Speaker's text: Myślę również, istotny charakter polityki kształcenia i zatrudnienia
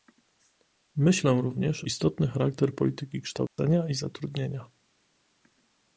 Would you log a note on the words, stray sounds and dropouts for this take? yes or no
yes